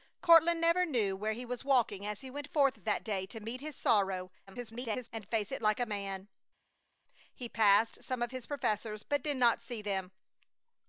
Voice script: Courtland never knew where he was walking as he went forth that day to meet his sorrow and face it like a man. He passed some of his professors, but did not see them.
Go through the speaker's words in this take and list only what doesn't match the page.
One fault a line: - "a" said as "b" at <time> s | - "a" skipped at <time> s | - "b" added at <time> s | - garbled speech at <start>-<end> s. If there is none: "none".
- garbled speech at 4.5-5.1 s